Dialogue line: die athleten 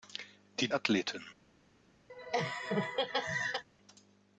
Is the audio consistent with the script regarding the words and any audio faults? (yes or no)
no